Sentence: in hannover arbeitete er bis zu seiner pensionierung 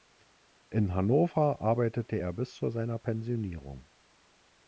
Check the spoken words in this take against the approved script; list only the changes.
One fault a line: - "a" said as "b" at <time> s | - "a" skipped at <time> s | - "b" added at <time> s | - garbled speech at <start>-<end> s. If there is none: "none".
none